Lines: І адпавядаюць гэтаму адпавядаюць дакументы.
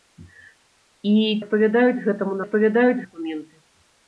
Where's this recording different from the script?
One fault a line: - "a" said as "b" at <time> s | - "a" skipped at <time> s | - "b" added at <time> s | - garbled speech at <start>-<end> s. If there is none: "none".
none